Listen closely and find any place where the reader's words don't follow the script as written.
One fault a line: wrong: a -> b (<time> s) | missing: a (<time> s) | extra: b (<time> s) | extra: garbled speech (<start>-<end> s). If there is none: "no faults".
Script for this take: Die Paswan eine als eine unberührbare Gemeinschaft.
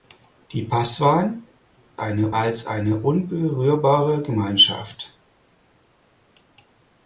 no faults